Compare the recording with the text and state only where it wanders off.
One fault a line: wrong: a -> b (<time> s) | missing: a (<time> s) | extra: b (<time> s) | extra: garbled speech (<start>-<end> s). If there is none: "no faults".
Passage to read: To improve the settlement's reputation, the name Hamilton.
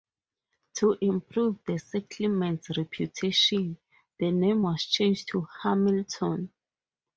extra: was changed to (4.6 s)